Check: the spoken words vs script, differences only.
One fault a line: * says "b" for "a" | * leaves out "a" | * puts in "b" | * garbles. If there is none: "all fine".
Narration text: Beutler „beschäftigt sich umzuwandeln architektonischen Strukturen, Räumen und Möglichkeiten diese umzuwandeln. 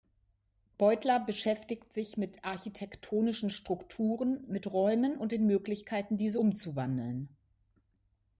* says "mit" for "umzuwandeln"
* puts in "mit"
* puts in "den"